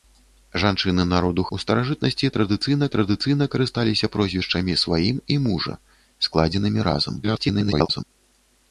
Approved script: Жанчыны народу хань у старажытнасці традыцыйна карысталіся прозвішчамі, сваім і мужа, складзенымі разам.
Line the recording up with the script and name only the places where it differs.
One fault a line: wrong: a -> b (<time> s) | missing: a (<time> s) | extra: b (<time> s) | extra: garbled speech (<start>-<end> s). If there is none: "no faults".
missing: хань (1.4 s)
extra: традыцыйна (2.9 s)
extra: garbled speech (7.2-8.0 s)